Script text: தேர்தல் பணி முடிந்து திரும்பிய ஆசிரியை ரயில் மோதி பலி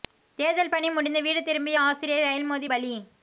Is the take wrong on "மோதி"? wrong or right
right